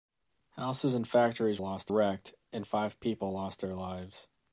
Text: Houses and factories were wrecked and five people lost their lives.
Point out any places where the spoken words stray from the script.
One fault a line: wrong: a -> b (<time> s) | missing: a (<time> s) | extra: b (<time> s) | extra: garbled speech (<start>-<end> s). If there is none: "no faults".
wrong: were -> lost (1.6 s)